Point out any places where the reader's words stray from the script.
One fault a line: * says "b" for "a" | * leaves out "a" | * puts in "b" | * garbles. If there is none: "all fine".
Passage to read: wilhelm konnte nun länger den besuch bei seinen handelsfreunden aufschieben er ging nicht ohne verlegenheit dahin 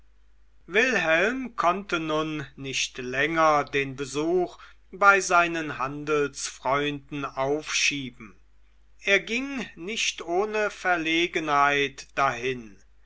* puts in "nicht"